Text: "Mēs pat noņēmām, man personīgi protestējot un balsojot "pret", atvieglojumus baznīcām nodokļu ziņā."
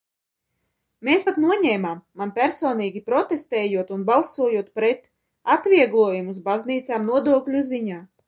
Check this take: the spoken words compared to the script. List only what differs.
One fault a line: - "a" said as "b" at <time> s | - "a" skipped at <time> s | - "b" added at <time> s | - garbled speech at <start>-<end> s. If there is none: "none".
none